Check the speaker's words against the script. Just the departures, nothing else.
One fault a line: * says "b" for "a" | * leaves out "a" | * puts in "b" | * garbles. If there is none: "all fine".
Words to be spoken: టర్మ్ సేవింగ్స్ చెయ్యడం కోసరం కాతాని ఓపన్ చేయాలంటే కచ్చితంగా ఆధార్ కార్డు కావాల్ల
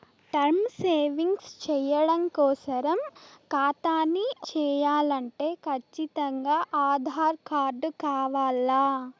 * leaves out "ఓపన్"